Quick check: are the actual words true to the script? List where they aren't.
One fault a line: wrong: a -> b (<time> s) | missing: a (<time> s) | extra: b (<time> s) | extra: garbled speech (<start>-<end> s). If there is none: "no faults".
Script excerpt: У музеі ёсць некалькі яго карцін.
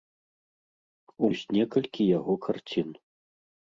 missing: музеі (1.3 s)